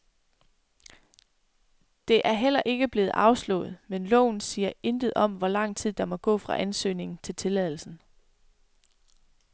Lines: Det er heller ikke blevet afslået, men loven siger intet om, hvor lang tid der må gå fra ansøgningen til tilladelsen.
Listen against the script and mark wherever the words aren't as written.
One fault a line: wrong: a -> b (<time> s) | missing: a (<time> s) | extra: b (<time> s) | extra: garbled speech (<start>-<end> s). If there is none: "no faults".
no faults